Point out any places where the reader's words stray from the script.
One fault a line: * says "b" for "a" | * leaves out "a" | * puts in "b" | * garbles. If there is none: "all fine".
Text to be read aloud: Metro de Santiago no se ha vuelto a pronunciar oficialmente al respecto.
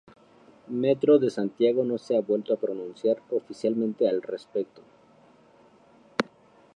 all fine